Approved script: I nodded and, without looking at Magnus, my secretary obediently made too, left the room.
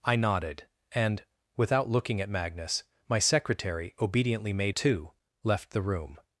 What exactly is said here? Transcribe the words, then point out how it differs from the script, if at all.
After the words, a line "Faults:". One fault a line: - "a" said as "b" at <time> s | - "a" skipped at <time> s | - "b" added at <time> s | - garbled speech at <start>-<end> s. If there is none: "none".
I nodded and, without looking at Magnus, my secretary obediently made too, left the room.
Faults:
none